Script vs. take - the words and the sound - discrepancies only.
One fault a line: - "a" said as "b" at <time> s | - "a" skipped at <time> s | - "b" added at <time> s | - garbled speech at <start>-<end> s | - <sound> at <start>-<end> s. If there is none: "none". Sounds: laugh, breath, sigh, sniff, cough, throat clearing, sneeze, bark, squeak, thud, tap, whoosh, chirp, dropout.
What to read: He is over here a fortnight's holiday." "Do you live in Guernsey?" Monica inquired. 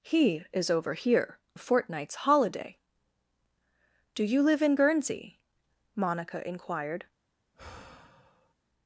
- sigh at 7.5-8.5 s